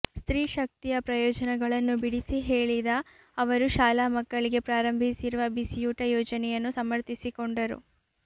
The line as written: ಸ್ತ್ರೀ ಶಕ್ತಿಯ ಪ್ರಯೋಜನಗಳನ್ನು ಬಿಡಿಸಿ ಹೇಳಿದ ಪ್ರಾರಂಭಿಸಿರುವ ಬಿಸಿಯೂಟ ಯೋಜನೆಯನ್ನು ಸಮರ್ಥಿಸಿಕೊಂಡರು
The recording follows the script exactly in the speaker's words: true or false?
false